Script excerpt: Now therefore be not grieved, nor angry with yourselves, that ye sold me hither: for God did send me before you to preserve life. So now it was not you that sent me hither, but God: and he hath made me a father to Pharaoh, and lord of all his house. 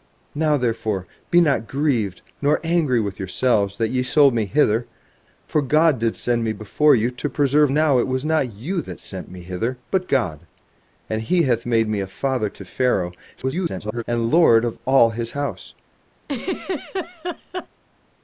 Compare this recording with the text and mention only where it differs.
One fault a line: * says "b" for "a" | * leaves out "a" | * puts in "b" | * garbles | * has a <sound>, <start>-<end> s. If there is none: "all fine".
* leaves out "life So"
* garbles
* has a laugh, 16.2-17.7 s